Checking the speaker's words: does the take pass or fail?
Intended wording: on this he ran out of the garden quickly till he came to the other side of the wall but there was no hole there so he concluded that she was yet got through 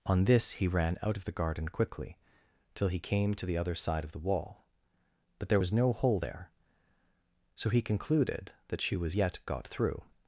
pass